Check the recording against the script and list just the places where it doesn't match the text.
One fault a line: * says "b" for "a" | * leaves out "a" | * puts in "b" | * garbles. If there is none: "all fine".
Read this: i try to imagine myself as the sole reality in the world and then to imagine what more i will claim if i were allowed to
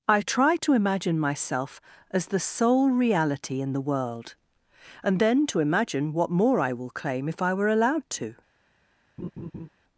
all fine